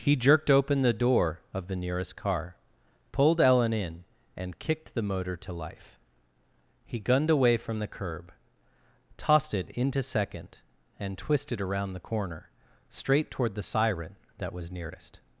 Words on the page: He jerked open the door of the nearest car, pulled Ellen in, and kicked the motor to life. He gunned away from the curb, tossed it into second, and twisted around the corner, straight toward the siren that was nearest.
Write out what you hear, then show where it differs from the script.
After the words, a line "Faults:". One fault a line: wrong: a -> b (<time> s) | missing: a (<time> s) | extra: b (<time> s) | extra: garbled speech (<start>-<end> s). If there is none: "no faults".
He jerked open the door of the nearest car, pulled Ellen in, and kicked the motor to life. He gunned away from the curb, tossed it into second, and twisted around the corner, straight toward the siren that was nearest.
Faults:
no faults